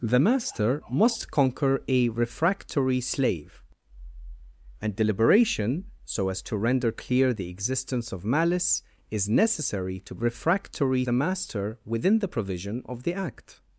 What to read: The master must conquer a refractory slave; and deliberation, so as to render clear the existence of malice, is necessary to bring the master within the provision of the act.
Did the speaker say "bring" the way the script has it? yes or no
no